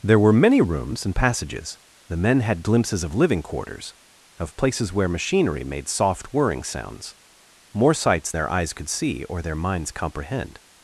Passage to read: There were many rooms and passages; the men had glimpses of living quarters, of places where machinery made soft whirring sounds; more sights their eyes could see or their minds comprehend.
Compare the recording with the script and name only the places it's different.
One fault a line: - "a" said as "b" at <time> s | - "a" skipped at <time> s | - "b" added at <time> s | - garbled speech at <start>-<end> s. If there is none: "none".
none